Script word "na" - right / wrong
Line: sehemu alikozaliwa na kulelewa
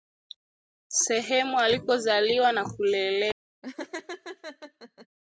right